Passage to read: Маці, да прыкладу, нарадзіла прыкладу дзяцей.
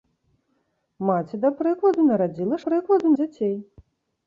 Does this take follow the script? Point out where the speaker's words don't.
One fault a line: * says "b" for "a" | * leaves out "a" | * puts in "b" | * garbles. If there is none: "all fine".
all fine